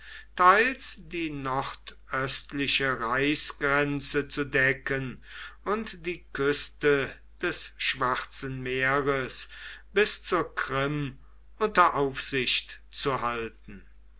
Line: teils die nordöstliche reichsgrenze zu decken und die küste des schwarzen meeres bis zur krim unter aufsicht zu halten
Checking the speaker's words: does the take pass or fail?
pass